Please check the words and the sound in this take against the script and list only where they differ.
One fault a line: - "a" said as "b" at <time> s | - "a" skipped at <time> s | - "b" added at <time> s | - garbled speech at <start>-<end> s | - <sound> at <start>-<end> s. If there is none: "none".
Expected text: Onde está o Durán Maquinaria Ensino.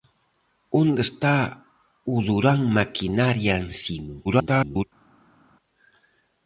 - garbled speech at 4.2-4.8 s